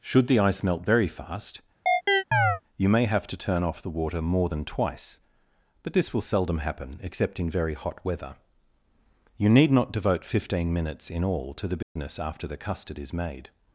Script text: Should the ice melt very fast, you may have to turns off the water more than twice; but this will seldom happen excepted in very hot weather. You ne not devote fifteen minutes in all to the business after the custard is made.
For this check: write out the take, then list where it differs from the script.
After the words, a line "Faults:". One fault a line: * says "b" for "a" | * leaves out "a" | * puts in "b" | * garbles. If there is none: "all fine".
Should the ice melt very fast, you may have to turn off the water more than twice; but this will seldom happen except in very hot weather. You need not devote fifteen minutes in all to the business after the custard is made.
Faults:
* says "turn" for "turns"
* says "except" for "excepted"
* says "need" for "ne"